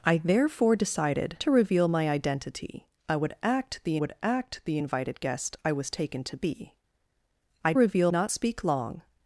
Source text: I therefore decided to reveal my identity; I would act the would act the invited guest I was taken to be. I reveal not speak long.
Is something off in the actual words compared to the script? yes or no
no